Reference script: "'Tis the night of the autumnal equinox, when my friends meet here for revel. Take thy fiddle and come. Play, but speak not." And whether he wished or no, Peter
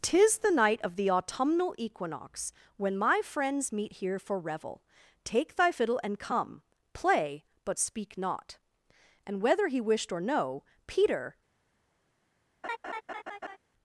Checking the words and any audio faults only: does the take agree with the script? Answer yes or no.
no